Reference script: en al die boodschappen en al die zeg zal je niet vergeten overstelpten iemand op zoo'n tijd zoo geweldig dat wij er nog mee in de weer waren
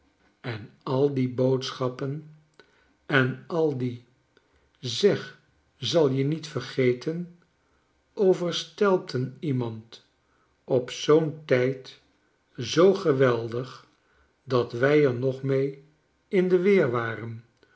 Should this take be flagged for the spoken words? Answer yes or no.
no